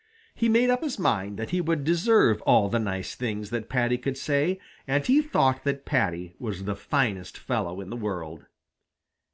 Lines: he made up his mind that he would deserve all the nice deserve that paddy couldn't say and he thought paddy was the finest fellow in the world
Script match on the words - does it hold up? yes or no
no